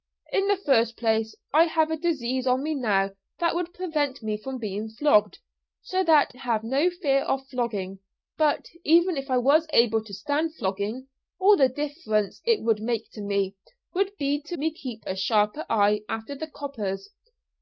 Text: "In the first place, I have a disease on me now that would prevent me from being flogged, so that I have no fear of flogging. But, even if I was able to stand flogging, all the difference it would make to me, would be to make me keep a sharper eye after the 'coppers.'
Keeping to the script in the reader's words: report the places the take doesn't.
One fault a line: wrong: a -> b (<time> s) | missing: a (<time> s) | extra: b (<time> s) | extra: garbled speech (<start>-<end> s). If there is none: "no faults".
missing: I (6.3 s)
missing: make (14.6 s)